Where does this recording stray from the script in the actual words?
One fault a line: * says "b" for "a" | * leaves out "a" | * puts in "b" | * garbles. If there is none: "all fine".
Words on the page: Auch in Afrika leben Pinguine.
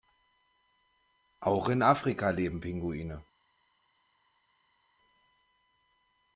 all fine